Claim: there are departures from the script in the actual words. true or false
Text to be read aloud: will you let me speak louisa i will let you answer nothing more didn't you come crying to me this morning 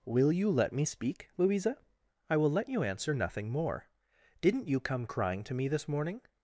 false